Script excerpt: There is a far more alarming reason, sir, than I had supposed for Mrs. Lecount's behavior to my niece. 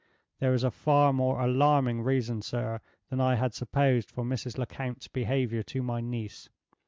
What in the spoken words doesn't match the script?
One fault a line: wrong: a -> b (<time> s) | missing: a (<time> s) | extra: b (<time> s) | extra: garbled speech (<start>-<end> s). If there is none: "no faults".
no faults